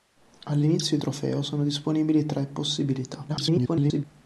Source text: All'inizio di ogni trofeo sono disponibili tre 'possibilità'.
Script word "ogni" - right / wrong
wrong